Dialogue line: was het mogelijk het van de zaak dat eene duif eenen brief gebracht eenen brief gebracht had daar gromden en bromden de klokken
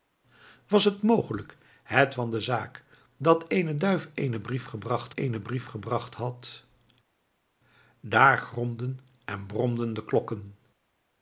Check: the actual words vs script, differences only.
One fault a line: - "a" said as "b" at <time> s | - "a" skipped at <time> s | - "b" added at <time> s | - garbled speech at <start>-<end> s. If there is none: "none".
none